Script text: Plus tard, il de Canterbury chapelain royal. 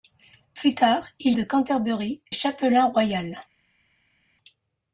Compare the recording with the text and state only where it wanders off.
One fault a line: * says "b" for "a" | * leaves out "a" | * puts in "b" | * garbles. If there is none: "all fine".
all fine